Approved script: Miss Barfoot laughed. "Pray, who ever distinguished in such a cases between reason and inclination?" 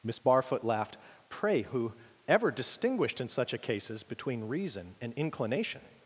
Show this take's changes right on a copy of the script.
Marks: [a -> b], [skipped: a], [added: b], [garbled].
Miss Barfoot laughed. "Pray, who ever distinguished in such a cases between reason and inclination?"